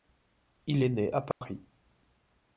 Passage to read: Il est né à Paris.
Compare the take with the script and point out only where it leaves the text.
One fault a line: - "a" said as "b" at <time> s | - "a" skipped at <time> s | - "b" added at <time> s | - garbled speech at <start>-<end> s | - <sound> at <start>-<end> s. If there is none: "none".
- dropout at 1.3-1.4 s